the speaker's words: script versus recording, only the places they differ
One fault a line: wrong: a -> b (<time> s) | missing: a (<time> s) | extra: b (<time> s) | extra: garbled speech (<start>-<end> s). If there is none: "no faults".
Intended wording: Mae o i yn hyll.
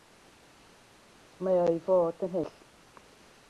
extra: fod (1.9 s)